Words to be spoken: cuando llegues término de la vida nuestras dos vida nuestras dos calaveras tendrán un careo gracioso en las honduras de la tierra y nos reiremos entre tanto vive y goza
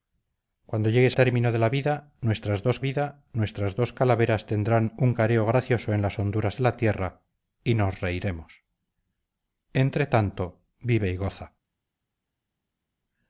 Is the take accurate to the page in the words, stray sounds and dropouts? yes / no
yes